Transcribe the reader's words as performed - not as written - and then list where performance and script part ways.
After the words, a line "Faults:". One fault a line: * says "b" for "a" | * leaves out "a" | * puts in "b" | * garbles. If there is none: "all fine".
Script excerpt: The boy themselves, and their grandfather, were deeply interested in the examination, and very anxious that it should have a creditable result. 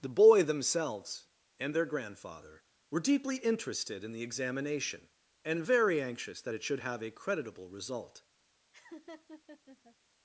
The boy themselves, and their grandfather, were deeply interested in the examination, and very anxious that it should have a creditable result.
Faults:
all fine